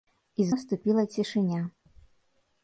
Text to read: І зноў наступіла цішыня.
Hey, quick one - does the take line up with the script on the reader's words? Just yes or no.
no